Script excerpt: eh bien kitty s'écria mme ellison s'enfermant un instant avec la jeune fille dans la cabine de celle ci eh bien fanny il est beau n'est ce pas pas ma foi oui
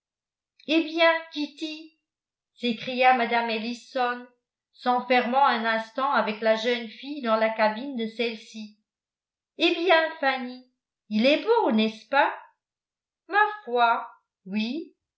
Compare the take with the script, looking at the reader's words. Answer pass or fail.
fail